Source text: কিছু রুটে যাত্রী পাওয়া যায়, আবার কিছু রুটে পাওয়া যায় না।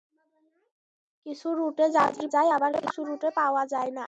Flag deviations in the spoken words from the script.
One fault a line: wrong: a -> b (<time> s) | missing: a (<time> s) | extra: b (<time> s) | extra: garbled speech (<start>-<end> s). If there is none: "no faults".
missing: পাওয়া (2.2 s)